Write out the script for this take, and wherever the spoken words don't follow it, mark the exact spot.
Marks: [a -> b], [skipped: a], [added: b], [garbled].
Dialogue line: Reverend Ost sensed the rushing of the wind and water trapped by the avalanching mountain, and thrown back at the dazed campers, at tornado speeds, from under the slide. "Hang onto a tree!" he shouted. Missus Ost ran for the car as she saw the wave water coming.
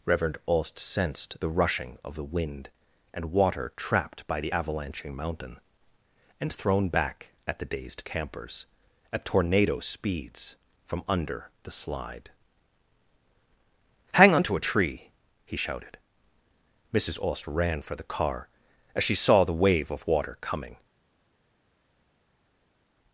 Reverend Ost sensed the rushing of the wind and water trapped by the avalanching mountain, and thrown back at the dazed campers, at tornado speeds, from under the slide. "Hang onto a tree!" he shouted. Missus Ost ran for the car as she saw the wave [added: of] water coming.